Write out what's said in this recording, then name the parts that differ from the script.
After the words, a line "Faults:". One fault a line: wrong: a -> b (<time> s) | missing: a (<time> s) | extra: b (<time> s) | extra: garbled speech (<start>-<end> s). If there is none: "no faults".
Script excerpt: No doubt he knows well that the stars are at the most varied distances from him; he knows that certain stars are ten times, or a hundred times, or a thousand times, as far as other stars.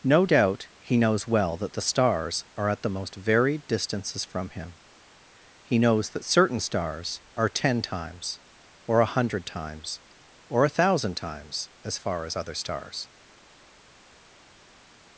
No doubt he knows well that the stars are at the most varied distances from him; he knows that certain stars are ten times, or a hundred times, or a thousand times, as far as other stars.
Faults:
no faults